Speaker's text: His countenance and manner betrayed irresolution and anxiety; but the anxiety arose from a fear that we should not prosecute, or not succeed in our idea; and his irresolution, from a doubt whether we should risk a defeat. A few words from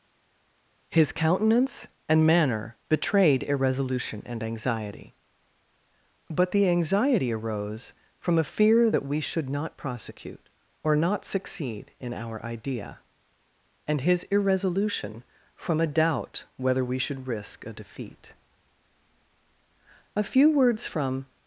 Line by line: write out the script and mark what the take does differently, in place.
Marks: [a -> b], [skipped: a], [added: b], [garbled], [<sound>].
His countenance and manner betrayed irresolution and anxiety; but the anxiety arose from a fear that we should not prosecute, or not succeed in our idea; and his irresolution, from a doubt whether we should risk a defeat. A few words from